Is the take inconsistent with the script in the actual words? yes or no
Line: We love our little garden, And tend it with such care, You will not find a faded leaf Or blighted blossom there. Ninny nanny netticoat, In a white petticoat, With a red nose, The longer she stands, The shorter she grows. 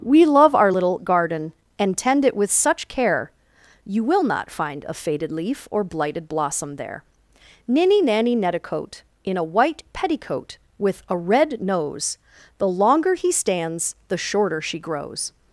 yes